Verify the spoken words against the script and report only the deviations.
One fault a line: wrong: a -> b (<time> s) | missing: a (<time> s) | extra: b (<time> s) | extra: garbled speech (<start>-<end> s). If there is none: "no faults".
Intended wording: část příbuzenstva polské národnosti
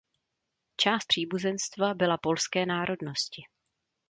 extra: byla (1.9 s)